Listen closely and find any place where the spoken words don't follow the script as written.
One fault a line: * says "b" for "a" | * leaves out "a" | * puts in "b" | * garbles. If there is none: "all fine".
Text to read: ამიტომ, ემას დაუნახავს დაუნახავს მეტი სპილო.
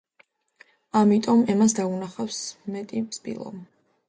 * leaves out "დაუნახავს"